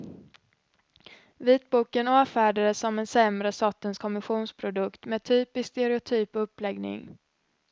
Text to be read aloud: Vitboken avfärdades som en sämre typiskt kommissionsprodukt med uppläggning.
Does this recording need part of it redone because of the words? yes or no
yes